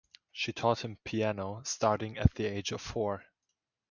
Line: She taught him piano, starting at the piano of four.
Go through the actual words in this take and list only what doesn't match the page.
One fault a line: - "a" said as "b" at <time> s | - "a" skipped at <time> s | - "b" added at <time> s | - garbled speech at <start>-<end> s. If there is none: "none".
- "piano" said as "age" at 2.5 s